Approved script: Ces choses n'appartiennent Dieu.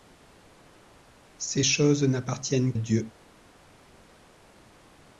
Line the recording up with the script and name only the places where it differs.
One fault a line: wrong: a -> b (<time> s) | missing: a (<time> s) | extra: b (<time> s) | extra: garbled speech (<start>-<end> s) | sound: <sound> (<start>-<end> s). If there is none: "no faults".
no faults